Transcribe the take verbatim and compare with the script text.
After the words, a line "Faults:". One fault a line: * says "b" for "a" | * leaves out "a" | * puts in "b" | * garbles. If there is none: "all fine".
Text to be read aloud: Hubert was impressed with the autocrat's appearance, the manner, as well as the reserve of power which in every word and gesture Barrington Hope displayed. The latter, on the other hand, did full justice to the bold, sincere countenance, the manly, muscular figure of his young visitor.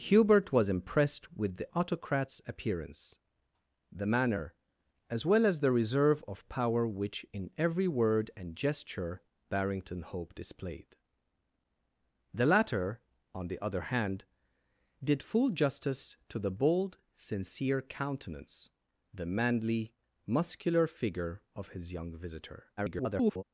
Hubert was impressed with the autocrat's appearance, the manner, as well as the reserve of power which in every word and gesture Barrington Hope displayed. The latter, on the other hand, did full justice to the bold, sincere countenance, the manly, muscular figure of his young visitor. [garbled]
Faults:
* garbles